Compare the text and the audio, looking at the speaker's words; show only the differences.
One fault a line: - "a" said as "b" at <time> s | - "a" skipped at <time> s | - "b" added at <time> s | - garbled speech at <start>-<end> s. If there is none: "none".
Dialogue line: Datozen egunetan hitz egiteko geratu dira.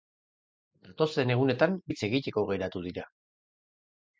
none